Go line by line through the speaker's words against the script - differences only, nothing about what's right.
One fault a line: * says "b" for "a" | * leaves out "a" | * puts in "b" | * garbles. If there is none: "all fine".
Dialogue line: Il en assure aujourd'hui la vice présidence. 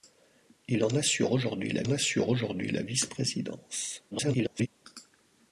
* puts in "assure aujourd'hui la"
* garbles